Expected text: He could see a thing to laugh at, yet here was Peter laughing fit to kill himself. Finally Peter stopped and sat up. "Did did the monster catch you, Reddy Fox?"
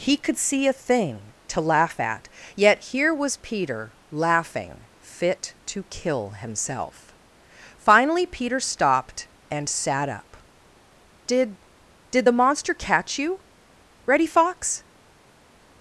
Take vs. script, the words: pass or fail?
pass